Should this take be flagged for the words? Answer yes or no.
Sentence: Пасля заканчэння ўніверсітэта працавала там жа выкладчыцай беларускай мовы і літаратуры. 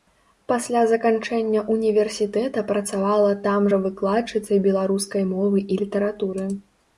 no